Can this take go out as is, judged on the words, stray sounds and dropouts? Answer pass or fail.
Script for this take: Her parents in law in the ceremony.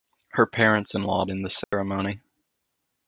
fail